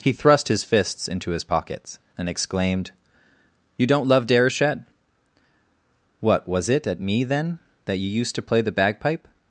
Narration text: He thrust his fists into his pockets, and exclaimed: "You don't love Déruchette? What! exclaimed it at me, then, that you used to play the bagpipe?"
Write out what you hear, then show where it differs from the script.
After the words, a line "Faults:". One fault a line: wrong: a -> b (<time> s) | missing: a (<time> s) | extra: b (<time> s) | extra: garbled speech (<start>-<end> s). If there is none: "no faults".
He thrust his fists into his pockets, and exclaimed: "You don't love Déruchette? What! was it at me, then, that you used to play the bagpipe?"
Faults:
wrong: exclaimed -> was (6.5 s)